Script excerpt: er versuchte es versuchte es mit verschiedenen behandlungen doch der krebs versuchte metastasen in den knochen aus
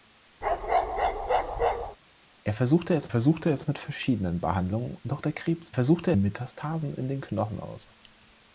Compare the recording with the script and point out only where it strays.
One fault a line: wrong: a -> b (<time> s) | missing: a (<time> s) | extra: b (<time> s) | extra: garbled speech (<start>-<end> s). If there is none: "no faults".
no faults